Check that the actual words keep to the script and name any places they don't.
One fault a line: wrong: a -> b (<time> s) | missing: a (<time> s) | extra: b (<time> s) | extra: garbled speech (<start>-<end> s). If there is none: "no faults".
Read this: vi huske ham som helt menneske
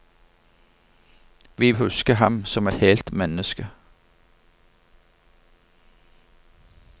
no faults